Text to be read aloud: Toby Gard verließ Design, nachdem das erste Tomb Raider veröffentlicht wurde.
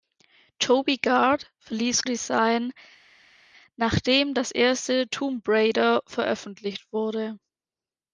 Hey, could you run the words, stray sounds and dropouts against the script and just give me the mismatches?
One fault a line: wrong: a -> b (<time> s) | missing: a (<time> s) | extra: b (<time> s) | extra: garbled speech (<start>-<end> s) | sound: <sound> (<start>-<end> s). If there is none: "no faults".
no faults